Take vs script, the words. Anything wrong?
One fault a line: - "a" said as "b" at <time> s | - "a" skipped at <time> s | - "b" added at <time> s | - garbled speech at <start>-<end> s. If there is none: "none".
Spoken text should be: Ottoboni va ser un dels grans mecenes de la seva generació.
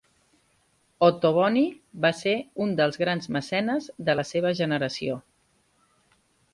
none